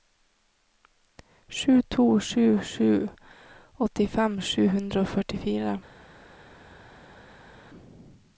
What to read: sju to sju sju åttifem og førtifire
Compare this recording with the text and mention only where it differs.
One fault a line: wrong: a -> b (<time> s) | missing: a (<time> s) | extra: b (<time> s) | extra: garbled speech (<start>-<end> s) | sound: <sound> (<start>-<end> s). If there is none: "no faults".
extra: sju hundre (4.5 s)